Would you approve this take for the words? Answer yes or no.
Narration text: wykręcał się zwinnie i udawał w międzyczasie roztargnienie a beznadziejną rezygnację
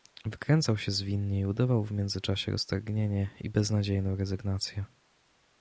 no